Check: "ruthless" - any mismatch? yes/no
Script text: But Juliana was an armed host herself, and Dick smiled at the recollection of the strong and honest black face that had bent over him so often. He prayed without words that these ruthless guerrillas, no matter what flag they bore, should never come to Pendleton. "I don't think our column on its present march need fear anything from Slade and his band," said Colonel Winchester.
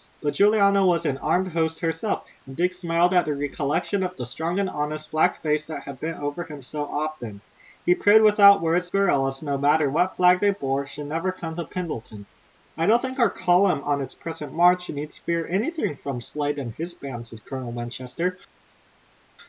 yes